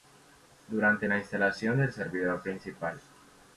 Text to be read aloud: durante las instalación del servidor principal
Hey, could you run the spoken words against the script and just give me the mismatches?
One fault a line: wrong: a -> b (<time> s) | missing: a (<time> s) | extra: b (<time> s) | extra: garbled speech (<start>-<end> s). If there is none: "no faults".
wrong: las -> la (1.1 s)